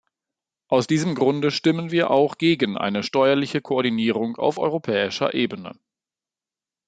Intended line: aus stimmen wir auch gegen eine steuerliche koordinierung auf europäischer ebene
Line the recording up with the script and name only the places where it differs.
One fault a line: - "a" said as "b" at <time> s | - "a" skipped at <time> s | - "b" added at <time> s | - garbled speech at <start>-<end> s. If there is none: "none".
- "diesem grunde" added at 0.9 s